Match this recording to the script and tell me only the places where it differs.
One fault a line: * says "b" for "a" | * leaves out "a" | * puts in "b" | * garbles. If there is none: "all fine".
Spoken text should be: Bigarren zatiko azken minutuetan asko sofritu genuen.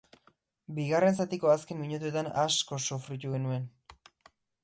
all fine